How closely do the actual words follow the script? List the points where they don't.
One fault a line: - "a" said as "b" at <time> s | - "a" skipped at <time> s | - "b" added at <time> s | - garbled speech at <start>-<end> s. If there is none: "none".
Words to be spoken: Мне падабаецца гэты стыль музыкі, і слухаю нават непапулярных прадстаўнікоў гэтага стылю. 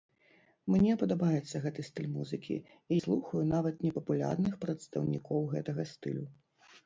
none